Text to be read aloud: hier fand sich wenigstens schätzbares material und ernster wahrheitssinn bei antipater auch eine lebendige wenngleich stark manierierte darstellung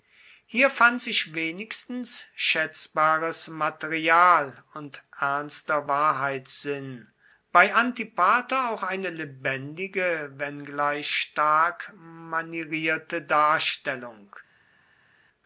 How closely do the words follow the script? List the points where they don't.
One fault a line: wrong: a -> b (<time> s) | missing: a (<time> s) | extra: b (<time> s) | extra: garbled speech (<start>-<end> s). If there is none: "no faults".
no faults